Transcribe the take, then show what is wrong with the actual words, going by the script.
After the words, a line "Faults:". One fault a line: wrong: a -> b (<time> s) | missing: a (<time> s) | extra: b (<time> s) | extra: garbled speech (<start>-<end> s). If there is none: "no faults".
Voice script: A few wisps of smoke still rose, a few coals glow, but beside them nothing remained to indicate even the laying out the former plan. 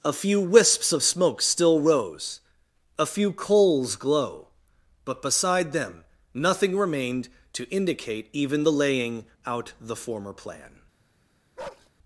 A few wisps of smoke still rose, a few coals glow, but beside them nothing remained to indicate even the laying out the former plan.
Faults:
no faults